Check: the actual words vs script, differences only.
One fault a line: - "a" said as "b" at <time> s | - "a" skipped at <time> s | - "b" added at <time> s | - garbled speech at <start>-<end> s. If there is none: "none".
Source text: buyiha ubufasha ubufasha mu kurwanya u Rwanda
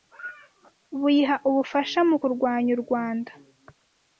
- "ubufasha" skipped at 2.0 s